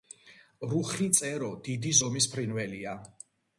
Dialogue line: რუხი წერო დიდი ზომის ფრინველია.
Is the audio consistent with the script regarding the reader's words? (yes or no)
yes